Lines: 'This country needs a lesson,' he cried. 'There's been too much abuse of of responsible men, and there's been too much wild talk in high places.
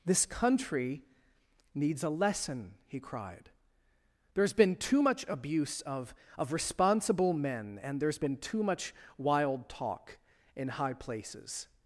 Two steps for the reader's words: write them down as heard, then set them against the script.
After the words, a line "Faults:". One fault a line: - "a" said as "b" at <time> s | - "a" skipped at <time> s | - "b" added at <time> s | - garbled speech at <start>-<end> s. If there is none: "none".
'This country needs a lesson,' he cried. 'There's been too much abuse of of responsible men, and there's been too much wild talk in high places.
Faults:
none